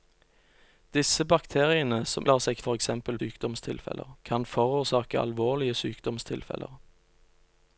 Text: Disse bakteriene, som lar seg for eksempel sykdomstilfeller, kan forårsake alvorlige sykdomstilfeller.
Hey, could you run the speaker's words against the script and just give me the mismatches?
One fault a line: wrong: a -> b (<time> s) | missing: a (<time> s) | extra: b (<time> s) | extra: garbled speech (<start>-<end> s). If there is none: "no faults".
no faults